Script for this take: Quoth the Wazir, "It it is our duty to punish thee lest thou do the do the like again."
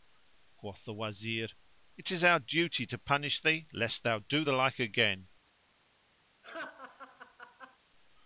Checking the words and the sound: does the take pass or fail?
fail